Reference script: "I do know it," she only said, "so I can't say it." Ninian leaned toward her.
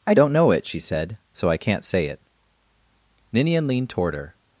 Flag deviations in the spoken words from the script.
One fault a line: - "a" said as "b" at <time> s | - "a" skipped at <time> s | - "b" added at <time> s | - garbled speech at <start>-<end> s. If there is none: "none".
- "do" said as "don't" at 0.1 s
- "only" skipped at 0.8 s